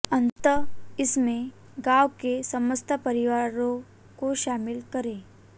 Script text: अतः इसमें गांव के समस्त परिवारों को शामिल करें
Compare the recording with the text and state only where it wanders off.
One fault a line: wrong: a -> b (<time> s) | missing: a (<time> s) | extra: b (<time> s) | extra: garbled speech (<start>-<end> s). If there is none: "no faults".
no faults